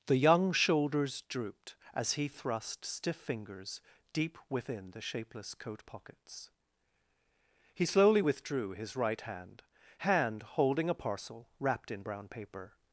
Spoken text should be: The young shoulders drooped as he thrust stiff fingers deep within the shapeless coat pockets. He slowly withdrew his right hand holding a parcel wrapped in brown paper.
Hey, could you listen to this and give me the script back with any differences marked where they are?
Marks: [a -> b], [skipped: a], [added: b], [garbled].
The young shoulders drooped as he thrust stiff fingers deep within the shapeless coat pockets. He slowly withdrew his right hand [added: hand] holding a parcel wrapped in brown paper.